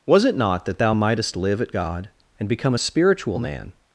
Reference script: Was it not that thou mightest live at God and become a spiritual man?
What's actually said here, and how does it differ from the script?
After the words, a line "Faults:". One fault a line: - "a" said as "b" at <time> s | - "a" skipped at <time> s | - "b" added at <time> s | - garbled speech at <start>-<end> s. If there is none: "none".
Was it not that thou mightest live at God and become a spiritual man?
Faults:
none